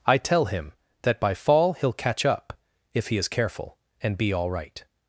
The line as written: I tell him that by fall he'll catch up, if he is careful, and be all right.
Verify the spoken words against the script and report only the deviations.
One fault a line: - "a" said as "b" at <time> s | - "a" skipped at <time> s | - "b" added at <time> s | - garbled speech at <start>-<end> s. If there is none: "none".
none